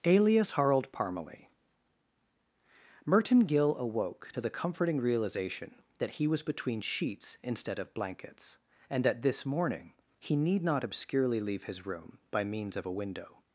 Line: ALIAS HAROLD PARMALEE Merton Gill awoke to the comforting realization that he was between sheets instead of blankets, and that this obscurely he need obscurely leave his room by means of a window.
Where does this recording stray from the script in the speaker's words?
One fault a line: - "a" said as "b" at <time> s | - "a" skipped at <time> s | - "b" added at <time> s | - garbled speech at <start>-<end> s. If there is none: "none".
- "obscurely" said as "morning" at 9.4 s
- "not" added at 10.6 s